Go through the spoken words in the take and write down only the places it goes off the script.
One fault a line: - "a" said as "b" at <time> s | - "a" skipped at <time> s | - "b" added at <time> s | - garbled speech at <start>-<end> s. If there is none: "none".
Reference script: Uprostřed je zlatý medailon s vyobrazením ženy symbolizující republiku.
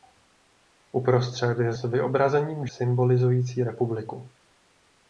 - "zlatý medailon" skipped at 1.7 s
- "ženy" skipped at 2.7 s